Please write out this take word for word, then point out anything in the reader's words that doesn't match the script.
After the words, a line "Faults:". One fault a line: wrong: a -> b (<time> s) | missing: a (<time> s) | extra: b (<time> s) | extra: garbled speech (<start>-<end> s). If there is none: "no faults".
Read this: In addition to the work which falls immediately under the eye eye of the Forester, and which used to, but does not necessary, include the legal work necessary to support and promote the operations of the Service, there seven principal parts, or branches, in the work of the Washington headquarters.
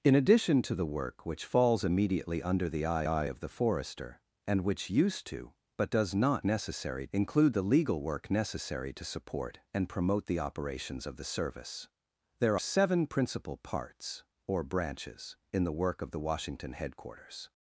In addition to the work which falls immediately under the eye eye of the Forester, and which used to, but does not necessary, include the legal work necessary to support and promote the operations of the Service, there seven principal parts, or branches, in the work of the Washington headquarters.
Faults:
no faults